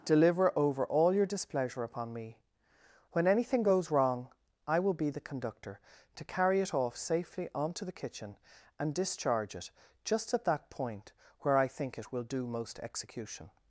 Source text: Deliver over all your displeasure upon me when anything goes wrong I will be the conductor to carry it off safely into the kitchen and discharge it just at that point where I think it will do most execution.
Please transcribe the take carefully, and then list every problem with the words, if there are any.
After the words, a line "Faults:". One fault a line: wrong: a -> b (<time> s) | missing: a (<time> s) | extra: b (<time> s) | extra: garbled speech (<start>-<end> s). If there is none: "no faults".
Deliver over all your displeasure upon me when anything goes wrong I will be the conductor to carry it off safely onto the kitchen and discharge it just at that point where I think it will do most execution.
Faults:
wrong: into -> onto (7.5 s)